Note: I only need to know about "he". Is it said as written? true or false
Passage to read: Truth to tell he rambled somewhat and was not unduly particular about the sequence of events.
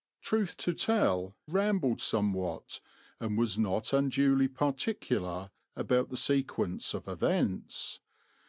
false